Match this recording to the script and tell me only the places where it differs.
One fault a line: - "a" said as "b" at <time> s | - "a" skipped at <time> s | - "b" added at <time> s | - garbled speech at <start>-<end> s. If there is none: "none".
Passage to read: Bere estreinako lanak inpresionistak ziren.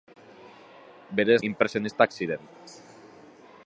- "estreinako lanak" skipped at 1.4 s